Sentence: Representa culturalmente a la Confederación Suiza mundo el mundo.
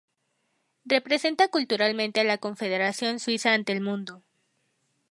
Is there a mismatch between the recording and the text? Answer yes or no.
yes